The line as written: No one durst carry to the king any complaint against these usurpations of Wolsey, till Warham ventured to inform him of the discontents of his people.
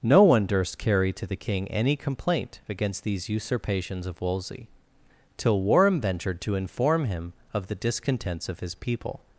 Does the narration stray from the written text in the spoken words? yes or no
no